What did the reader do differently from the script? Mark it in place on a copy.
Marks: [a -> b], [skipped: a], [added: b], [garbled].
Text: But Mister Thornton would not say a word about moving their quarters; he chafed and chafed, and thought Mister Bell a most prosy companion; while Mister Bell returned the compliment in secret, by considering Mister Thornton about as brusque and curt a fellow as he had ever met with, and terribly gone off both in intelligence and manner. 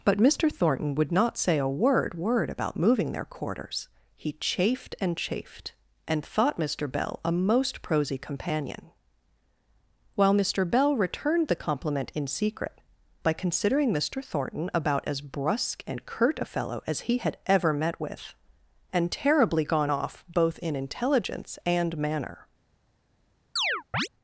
But Mister Thornton would not say a word [added: word] about moving their quarters; he chafed and chafed, and thought Mister Bell a most prosy companion; while Mister Bell returned the compliment in secret, by considering Mister Thornton about as brusque and curt a fellow as he had ever met with, and terribly gone off both in intelligence and manner.